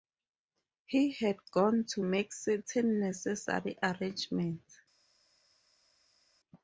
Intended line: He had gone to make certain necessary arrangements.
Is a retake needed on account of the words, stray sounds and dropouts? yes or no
no